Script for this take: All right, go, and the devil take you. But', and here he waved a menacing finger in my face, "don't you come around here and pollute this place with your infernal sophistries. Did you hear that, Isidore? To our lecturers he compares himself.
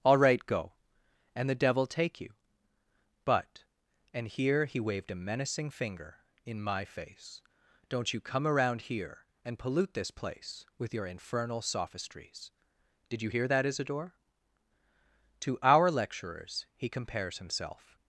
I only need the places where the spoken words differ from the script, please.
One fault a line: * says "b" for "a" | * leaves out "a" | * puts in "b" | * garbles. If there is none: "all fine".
all fine